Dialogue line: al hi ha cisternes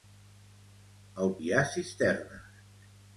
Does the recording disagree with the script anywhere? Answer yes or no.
no